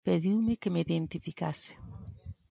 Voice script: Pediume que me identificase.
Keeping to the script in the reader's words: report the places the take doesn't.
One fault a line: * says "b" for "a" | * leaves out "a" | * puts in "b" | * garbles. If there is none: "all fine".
all fine